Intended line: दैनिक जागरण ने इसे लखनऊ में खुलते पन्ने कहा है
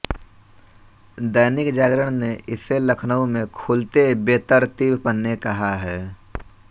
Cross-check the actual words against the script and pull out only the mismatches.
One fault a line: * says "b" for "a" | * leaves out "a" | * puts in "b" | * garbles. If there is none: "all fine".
* puts in "बेतरतीब"